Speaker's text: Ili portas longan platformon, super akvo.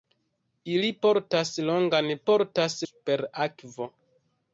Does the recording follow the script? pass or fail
fail